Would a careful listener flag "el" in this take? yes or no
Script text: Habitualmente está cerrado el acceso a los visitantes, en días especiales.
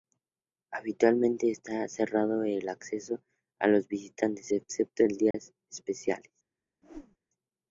no